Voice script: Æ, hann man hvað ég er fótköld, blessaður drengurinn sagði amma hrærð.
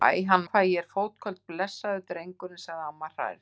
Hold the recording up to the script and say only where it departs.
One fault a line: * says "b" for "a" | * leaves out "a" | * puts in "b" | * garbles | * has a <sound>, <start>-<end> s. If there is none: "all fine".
* leaves out "man"